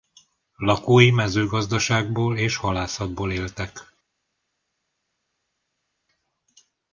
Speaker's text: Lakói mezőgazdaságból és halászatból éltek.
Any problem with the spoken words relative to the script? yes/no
no